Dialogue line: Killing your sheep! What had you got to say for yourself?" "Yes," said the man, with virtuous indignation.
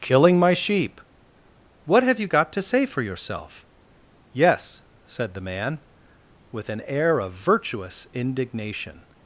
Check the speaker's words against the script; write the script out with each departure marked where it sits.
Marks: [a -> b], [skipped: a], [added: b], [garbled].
Killing [your -> my] sheep! What [had -> have] you got to say for yourself?" "Yes," said the man, with [added: an air of] virtuous indignation.